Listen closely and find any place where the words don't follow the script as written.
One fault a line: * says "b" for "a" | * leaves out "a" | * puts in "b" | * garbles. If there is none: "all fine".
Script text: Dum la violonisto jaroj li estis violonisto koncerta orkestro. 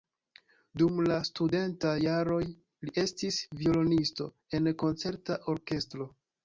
* says "studentaj" for "violonisto"
* puts in "en"